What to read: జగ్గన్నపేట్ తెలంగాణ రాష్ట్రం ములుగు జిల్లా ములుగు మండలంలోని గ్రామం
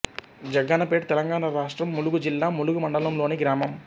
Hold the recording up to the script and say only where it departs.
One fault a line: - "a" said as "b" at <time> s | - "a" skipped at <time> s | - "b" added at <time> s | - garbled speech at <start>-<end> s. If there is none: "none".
none